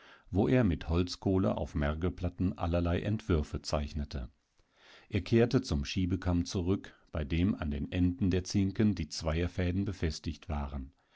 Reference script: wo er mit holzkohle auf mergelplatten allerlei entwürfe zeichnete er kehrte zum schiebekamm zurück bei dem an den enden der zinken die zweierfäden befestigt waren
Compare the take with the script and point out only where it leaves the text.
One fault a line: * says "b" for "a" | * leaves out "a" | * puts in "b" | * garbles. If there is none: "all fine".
all fine